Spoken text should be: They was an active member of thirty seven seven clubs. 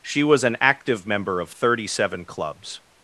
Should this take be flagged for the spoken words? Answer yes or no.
yes